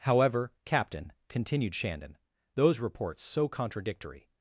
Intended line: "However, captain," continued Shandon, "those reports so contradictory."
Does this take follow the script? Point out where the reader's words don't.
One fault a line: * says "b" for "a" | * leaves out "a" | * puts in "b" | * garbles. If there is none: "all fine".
all fine